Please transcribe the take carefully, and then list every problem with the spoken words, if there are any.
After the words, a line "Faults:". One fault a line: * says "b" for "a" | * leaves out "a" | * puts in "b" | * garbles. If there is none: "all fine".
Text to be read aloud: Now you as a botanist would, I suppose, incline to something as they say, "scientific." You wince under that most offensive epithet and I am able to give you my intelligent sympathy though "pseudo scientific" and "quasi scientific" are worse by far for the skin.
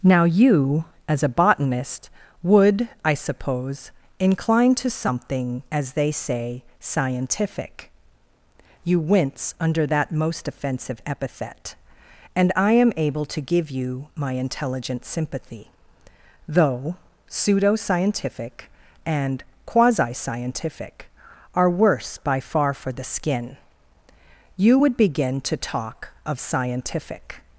Now you as a botanist would, I suppose, incline to something as they say, "scientific." You wince under that most offensive epithet and I am able to give you my intelligent sympathy though "pseudo scientific" and "quasi scientific" are worse by far for the skin. You would begin to talk of scientific
Faults:
* puts in "You would begin to talk of scientific"